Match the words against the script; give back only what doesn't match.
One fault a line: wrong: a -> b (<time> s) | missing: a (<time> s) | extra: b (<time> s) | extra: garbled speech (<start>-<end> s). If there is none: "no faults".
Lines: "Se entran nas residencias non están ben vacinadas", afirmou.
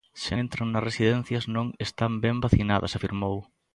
no faults